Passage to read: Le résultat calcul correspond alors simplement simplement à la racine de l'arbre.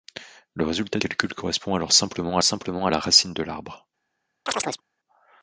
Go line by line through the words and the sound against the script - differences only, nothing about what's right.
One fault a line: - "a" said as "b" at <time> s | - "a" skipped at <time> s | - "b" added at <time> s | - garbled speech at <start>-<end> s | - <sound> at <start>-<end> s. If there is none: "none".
- chirp at 4.5-4.8 s